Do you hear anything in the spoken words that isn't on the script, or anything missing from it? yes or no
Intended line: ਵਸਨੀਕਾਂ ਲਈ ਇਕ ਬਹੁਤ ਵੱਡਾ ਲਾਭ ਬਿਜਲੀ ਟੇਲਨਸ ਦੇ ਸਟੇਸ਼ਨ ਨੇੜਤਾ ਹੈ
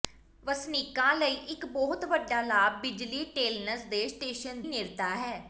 no